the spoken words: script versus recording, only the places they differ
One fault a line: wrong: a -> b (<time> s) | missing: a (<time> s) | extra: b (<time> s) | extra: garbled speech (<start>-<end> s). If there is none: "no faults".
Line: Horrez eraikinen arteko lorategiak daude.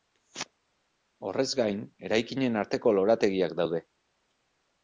extra: gain (1.6 s)